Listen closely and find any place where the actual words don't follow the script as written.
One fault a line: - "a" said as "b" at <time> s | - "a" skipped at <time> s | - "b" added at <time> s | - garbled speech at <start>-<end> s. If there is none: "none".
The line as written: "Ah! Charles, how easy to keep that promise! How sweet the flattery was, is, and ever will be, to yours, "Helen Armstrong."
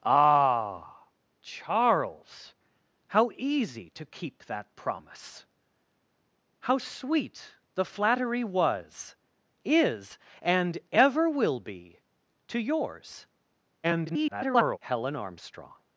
- garbled speech at 13.8-14.8 s